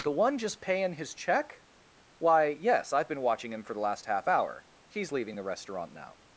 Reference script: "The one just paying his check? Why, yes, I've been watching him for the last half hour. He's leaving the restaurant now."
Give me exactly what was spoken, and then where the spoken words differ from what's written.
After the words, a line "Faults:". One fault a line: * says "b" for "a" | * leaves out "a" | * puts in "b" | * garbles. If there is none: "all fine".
"The one just paying his check? Why, yes, I've been watching him for the last half hour. He's leaving the restaurant now."
Faults:
all fine